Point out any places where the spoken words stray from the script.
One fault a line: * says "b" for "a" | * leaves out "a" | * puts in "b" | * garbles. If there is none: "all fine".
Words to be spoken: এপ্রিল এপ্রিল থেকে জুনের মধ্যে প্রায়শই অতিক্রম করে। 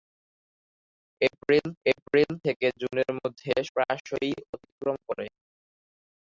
all fine